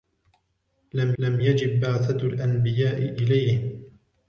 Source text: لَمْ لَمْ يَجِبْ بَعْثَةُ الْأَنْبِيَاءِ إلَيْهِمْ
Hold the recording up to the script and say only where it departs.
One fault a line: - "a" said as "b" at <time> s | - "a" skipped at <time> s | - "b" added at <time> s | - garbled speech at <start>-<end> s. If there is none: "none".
none